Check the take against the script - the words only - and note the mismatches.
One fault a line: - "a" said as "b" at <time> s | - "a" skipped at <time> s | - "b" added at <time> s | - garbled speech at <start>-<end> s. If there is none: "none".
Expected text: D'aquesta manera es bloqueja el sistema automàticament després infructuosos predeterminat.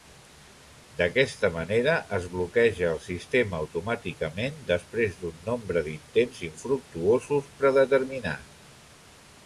- "d'un nombre d'intents" added at 5.2 s